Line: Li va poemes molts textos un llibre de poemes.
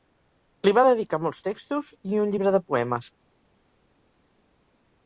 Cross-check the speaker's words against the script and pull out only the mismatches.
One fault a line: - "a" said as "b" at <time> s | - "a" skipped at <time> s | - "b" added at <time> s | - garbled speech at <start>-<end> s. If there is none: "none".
- "poemes" said as "dedicar" at 0.8 s
- "i" added at 2.1 s